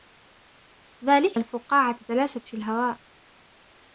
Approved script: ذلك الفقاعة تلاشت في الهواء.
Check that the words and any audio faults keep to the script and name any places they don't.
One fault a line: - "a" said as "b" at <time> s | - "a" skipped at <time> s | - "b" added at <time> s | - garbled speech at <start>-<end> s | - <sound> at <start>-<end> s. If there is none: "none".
none